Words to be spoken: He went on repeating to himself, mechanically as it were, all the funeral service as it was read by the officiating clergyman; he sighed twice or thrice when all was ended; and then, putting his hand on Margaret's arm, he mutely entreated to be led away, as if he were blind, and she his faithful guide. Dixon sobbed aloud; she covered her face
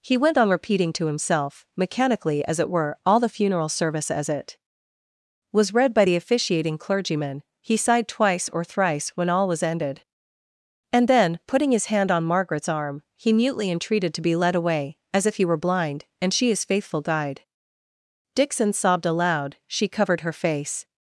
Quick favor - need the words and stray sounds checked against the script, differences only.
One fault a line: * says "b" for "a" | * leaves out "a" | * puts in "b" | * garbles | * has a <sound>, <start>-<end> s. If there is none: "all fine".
all fine